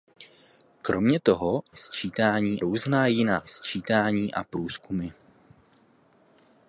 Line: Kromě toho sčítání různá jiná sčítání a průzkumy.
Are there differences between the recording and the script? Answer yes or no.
no